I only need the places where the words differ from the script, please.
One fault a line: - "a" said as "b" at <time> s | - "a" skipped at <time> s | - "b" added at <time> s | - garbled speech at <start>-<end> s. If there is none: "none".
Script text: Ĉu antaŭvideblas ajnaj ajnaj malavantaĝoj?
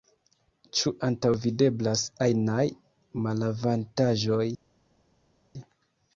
- "ajnaj" skipped at 2.7 s